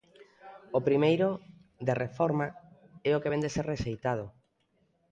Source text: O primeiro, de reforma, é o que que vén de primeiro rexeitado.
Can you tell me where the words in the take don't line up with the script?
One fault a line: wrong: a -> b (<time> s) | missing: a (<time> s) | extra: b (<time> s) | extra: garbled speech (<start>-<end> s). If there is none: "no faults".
missing: que (3.3 s)
wrong: primeiro -> ser (3.6 s)